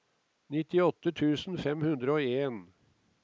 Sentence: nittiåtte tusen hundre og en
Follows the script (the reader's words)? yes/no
no